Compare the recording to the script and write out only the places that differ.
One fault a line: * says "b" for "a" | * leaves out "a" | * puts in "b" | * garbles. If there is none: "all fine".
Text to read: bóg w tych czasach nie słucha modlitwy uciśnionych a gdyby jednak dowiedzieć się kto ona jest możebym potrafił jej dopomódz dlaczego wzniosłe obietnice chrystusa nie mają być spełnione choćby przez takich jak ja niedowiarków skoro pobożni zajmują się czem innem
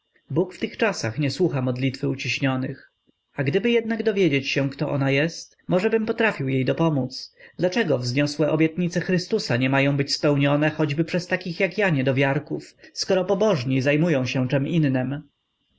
all fine